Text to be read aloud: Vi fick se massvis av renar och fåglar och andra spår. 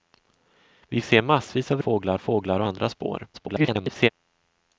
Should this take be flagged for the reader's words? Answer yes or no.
yes